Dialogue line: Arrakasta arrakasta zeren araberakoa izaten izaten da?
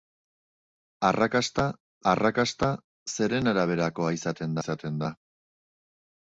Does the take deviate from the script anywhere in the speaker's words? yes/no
no